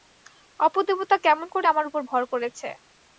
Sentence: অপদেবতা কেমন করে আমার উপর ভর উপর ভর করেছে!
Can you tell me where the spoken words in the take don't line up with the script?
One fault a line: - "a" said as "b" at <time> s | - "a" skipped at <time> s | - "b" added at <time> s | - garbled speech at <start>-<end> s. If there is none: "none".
- "উপর ভর" skipped at 2.2 s